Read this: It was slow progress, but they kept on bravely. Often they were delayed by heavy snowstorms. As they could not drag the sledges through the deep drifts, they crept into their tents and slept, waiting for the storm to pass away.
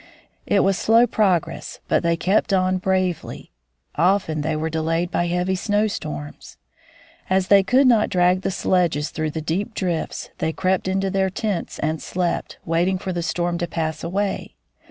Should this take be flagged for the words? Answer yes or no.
no